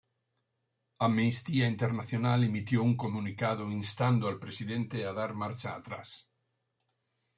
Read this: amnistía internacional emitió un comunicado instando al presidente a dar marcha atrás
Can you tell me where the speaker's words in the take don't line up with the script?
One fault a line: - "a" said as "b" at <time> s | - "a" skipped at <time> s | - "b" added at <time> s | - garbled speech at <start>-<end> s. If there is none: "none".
none